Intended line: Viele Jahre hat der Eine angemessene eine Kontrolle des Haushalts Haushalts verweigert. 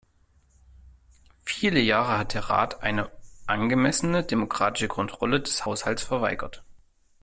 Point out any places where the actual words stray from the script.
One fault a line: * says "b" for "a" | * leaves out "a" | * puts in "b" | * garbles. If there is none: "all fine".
* puts in "Rat"
* says "demokratische" for "eine"
* leaves out "Haushalts"